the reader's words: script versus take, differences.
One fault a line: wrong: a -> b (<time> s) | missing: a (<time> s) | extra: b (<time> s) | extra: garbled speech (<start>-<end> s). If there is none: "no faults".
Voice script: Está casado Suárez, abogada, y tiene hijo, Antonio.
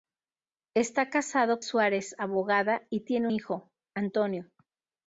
no faults